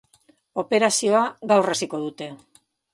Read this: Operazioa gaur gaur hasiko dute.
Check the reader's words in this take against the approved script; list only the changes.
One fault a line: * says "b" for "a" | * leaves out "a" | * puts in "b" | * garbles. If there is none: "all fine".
* leaves out "gaur"